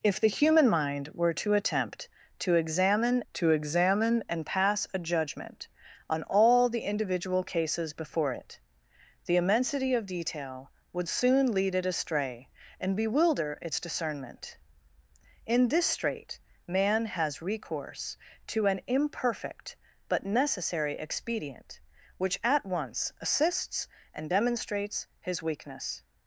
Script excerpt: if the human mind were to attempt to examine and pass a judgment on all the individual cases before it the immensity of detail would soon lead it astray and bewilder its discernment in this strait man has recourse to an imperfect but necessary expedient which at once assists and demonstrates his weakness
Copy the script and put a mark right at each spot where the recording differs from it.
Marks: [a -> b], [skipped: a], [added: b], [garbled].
if the human mind were to attempt to examine [added: to examine] and pass a judgment on all the individual cases before it the immensity of detail would soon lead it astray and bewilder its discernment in this strait man has recourse to an imperfect but necessary expedient which at once assists and demonstrates his weakness